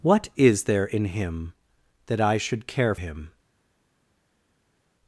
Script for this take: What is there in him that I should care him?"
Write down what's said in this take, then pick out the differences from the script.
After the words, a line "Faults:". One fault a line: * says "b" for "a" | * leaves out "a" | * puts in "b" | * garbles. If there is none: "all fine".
What is there in him that I should care him?"
Faults:
all fine